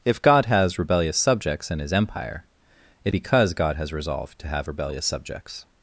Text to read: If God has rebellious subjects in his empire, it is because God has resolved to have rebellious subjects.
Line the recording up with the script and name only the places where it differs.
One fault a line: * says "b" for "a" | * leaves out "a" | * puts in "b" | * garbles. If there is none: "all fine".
* leaves out "is"